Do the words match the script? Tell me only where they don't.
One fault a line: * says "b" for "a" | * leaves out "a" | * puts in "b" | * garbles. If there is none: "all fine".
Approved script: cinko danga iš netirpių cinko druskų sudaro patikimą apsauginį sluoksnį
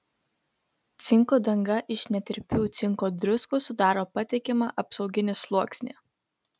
all fine